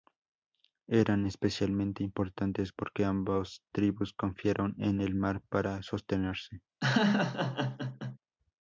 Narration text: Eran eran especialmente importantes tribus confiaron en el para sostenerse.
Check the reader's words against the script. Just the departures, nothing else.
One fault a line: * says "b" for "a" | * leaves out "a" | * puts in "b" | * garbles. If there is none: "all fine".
* leaves out "eran"
* puts in "porque ambas"
* puts in "mar"